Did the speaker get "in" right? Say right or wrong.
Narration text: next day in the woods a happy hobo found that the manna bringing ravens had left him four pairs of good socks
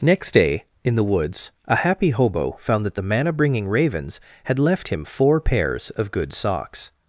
right